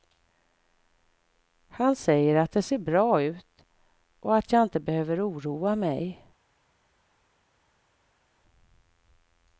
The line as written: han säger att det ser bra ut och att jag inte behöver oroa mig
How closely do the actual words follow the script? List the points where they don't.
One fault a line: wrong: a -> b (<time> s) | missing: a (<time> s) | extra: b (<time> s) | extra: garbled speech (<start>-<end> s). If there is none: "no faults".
no faults